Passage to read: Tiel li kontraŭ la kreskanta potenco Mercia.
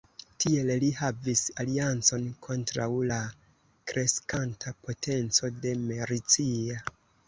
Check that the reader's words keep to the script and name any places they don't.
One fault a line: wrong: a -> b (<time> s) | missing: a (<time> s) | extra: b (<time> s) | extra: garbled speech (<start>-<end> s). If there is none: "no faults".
extra: havis aliancon (1.0 s)
extra: de (5.6 s)